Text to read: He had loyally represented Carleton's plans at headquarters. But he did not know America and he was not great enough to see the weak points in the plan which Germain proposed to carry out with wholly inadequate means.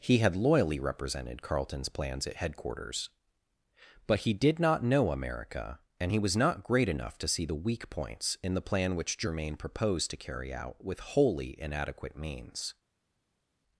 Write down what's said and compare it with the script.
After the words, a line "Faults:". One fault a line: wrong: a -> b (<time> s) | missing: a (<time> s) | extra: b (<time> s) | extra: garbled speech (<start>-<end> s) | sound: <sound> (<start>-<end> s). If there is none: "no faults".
He had loyally represented Carleton's plans at headquarters. But he did not know America and he was not great enough to see the weak points in the plan which Germain proposed to carry out with wholly inadequate means.
Faults:
no faults